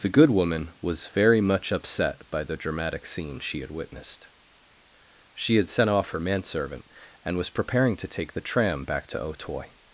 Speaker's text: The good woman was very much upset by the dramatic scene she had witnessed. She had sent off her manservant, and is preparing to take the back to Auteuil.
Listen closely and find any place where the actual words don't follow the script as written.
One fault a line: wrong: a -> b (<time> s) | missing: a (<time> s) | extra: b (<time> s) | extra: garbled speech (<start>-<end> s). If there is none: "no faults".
wrong: is -> was (7.4 s)
extra: tram (8.4 s)